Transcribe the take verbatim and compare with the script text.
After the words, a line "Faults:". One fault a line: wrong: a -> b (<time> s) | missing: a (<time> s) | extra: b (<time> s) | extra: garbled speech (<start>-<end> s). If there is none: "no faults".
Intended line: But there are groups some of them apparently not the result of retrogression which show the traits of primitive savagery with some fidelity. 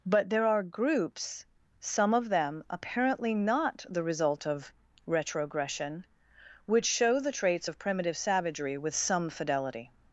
But there are groups some of them apparently not the result of retrogression which show the traits of primitive savagery with some fidelity.
Faults:
no faults